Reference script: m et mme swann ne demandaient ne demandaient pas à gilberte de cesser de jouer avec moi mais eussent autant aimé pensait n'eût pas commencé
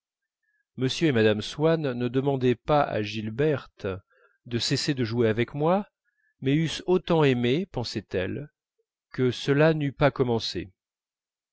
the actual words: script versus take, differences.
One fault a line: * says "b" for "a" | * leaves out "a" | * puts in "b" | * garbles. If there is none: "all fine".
* leaves out "ne demandaient"
* puts in "elle que cela"